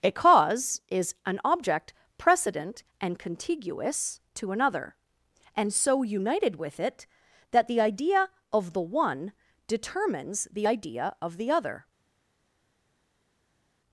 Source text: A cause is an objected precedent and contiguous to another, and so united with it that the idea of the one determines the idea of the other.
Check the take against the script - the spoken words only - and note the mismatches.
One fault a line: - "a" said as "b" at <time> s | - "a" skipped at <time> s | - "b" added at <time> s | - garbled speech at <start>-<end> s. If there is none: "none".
- "objected" said as "object" at 1.4 s